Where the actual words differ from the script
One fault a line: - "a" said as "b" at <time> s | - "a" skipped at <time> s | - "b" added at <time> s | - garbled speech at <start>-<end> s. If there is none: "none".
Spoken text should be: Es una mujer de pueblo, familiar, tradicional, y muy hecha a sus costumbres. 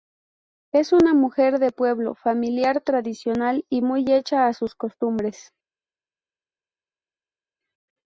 none